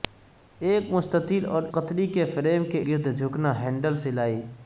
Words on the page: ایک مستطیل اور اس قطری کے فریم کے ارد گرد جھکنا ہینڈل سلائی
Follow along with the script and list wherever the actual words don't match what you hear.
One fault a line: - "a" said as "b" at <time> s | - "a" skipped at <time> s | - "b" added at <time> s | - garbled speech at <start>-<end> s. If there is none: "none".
- "اس" skipped at 1.6 s
- "ارد" skipped at 2.8 s